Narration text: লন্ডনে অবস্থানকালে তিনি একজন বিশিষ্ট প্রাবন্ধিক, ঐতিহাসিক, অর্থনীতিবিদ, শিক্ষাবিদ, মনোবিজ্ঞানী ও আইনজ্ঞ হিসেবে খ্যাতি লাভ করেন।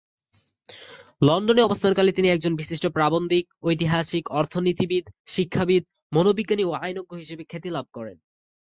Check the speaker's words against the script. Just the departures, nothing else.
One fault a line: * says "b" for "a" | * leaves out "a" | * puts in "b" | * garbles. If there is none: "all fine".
all fine